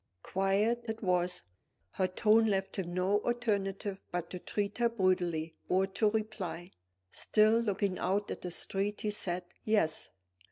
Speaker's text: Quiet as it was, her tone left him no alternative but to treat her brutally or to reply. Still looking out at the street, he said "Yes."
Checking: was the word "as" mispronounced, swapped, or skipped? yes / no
yes